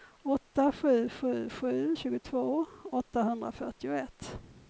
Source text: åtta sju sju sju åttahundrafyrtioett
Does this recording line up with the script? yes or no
no